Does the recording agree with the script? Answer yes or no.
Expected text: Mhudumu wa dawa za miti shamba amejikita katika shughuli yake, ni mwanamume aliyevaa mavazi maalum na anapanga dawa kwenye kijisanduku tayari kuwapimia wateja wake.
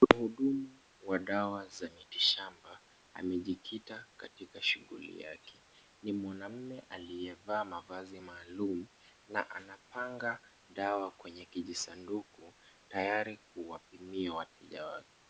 yes